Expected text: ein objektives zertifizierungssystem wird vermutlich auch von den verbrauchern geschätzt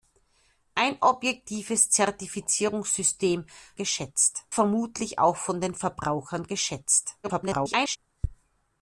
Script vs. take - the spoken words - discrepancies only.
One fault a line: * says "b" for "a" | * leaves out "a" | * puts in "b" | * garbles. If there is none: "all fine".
* says "geschätzt" for "wird"
* garbles